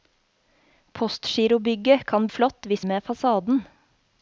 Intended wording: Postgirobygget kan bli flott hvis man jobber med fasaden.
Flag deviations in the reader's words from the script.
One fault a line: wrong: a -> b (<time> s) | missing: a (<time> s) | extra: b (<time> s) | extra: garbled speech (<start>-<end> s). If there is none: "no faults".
missing: bli (2.3 s)
missing: man jobber (2.9 s)